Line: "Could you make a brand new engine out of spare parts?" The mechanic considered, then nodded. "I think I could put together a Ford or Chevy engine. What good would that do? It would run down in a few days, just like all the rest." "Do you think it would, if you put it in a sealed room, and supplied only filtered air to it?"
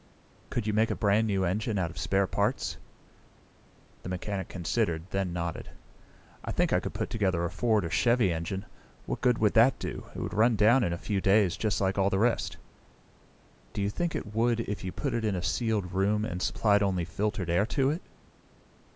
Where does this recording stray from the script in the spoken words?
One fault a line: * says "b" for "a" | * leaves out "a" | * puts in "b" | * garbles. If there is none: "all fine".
all fine